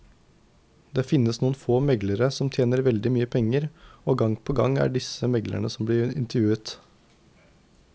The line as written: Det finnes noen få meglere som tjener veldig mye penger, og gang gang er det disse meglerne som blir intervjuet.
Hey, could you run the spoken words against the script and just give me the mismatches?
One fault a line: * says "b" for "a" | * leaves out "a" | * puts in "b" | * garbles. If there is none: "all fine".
* puts in "på"